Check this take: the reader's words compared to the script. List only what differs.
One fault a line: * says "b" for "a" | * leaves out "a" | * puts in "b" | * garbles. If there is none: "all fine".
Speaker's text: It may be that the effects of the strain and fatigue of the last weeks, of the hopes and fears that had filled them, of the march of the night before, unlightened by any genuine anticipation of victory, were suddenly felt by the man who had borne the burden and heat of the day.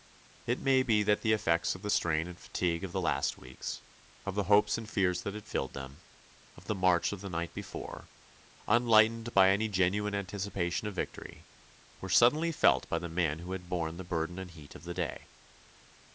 all fine